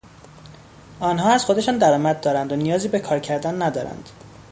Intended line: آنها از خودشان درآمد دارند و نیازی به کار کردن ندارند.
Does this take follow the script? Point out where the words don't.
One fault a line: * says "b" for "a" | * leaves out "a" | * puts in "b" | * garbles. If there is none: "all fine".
all fine